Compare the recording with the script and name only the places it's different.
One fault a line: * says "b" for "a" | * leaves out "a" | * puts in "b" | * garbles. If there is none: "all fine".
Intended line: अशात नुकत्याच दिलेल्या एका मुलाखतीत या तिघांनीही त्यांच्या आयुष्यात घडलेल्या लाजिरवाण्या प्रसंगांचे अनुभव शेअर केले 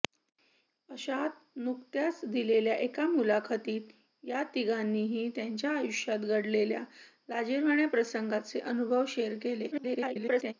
* garbles